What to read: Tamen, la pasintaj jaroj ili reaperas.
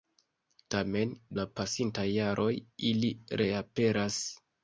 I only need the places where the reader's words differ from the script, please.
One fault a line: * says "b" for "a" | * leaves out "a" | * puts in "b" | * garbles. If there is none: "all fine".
all fine